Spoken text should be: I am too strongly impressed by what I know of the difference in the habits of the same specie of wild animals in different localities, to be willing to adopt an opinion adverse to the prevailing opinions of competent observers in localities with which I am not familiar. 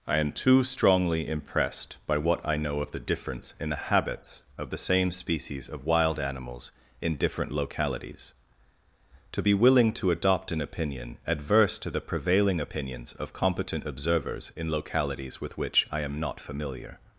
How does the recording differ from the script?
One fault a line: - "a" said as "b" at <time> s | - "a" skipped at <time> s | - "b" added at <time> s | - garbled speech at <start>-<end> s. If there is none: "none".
- "specie" said as "species" at 5.1 s